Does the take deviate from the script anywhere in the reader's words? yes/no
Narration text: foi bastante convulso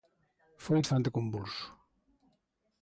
no